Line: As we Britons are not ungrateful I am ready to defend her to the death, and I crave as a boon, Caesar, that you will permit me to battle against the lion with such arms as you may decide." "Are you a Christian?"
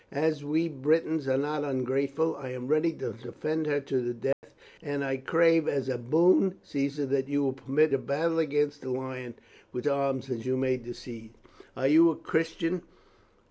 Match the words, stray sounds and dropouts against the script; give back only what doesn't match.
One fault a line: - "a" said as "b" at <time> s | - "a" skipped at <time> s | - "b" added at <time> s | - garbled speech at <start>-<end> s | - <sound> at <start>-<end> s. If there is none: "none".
- dropout at 4.3-4.4 s
- "me" skipped at 7.9 s
- "such" skipped at 9.9 s